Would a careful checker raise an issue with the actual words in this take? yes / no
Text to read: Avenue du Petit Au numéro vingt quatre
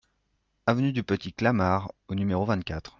yes